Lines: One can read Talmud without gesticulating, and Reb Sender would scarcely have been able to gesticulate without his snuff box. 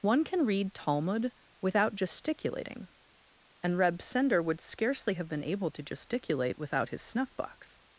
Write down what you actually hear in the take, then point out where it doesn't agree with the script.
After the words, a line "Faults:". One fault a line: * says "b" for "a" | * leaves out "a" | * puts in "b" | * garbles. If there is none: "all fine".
One can read Talmud without gesticulating, and Reb Sender would scarcely have been able to gesticulate without his snuff box.
Faults:
all fine